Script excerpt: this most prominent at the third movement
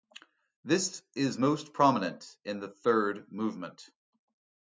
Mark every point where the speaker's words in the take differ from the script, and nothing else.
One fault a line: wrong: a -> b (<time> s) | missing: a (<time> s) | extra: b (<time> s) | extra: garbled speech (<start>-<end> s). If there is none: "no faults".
extra: is (1.1 s)
wrong: at -> in (2.5 s)